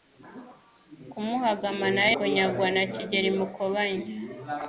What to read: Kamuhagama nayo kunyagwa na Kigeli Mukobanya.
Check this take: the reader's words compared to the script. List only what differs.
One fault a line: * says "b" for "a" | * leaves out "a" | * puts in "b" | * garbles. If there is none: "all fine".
all fine